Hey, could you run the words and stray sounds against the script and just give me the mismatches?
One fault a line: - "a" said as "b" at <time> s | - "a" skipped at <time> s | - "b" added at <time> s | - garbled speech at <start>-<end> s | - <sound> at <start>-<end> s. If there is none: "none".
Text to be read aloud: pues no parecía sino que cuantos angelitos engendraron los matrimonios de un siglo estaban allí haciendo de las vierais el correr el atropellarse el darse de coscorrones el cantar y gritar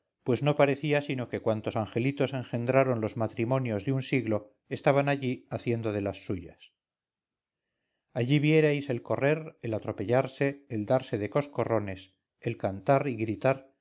- "suyas allí" added at 6.2 s